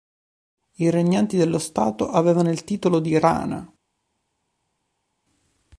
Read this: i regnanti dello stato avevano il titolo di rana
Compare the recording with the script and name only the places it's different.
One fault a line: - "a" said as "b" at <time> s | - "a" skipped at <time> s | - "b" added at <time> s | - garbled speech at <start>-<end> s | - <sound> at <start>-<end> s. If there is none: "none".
none